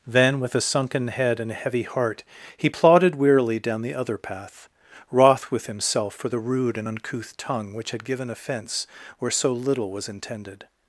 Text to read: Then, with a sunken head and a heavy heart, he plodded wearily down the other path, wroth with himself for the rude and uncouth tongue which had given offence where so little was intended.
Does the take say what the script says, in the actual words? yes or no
yes